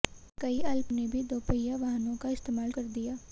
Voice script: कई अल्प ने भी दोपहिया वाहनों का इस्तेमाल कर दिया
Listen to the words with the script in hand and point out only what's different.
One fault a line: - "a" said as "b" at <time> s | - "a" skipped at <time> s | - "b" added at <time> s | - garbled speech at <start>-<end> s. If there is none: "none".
none